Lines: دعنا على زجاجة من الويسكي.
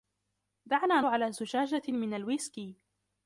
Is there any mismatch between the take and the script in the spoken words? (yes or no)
no